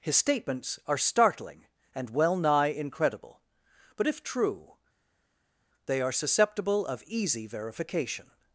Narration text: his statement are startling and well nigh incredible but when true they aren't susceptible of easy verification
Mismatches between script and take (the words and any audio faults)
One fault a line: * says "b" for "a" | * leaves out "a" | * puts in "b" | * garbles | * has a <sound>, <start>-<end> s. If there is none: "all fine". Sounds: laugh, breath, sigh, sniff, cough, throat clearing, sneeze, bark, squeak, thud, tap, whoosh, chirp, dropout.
* says "statements" for "statement"
* says "if" for "when"
* says "are" for "aren't"